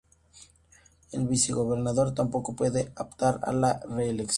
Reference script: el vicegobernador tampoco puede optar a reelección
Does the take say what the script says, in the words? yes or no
no